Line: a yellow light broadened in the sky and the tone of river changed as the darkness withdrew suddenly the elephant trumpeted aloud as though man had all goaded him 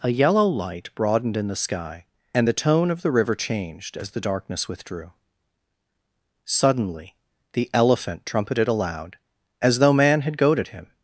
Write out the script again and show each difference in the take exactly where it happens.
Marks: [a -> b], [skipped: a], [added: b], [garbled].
a yellow light broadened in the sky and the tone of [added: the] river changed as the darkness withdrew suddenly the elephant trumpeted aloud as though man had [skipped: all] goaded him